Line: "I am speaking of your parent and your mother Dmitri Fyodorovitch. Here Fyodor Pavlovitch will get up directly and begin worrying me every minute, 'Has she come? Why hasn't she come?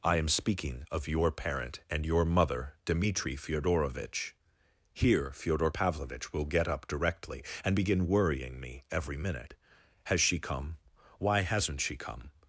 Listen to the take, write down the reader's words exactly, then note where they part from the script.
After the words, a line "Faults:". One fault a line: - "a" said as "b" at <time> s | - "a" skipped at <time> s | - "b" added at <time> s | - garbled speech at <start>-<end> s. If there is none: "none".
"I am speaking of your parent and your mother Dmitri Fyodorovitch. Here Fyodor Pavlovitch will get up directly and begin worrying me every minute, 'Has she come? Why hasn't she come?
Faults:
none